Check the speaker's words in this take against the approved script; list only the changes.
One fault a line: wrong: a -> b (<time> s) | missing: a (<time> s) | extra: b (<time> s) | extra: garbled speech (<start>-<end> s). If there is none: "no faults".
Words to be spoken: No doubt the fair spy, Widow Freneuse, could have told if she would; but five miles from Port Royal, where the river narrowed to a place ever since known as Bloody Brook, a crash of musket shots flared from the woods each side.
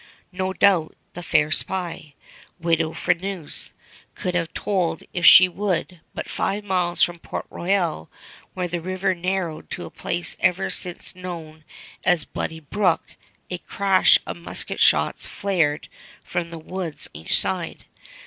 no faults